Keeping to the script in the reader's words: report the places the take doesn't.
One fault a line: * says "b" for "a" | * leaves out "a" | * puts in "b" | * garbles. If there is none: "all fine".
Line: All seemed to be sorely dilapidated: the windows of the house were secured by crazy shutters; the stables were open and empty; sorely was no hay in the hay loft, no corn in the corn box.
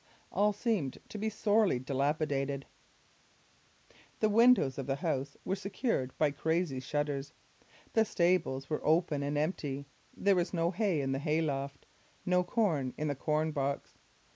* says "there" for "sorely"